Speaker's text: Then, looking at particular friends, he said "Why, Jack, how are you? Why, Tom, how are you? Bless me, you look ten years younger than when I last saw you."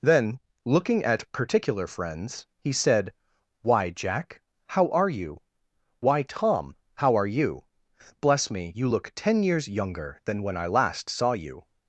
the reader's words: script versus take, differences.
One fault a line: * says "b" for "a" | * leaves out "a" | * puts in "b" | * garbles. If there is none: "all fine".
all fine